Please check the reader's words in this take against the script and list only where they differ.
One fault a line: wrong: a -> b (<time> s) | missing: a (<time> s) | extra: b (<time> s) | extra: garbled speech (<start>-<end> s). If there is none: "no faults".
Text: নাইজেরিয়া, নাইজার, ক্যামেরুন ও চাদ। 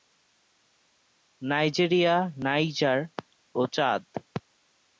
missing: ক্যামেরুন (3.0 s)